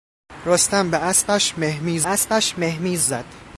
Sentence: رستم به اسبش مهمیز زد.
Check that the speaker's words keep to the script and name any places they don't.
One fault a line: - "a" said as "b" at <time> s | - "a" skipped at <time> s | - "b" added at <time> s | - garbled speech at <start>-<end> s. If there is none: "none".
- "اسبش مهمیز" added at 2.0 s